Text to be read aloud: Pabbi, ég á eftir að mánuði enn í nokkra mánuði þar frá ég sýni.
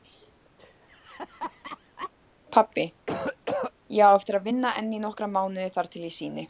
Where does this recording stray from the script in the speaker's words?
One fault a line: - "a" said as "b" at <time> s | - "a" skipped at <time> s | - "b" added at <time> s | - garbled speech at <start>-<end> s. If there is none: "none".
- "mánuði" said as "vinna" at 4.5 s
- "frá" said as "til" at 5.9 s